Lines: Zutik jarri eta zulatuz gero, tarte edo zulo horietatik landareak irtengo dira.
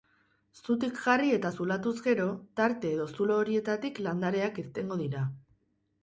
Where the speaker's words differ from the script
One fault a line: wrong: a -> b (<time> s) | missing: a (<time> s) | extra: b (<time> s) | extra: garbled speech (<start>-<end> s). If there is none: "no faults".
no faults